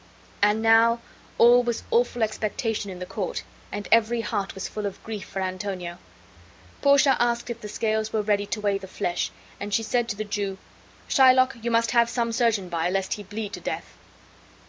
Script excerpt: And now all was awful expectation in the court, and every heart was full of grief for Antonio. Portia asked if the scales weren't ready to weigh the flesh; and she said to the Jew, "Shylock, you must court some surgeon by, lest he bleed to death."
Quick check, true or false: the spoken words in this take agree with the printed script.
false